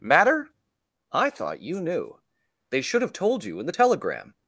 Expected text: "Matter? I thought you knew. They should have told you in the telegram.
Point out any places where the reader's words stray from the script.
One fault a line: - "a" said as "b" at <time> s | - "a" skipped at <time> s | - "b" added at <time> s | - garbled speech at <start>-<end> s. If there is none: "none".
none